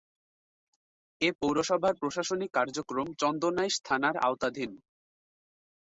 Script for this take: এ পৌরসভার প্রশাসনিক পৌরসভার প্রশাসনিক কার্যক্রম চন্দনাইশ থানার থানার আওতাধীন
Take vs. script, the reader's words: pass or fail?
fail